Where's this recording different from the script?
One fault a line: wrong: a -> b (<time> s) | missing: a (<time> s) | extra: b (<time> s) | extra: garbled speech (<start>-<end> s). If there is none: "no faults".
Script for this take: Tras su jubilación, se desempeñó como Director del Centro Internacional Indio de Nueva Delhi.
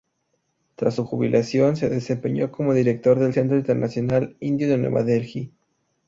no faults